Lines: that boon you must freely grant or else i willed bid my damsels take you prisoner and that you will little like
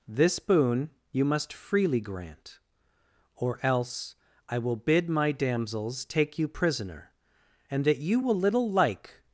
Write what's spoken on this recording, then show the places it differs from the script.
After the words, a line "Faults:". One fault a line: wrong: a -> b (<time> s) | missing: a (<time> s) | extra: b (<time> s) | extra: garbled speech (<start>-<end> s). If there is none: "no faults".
this boon you must freely grant or else i will bid my damsels take you prisoner and that you will little like
Faults:
wrong: that -> this (0.1 s)
wrong: willed -> will (4.6 s)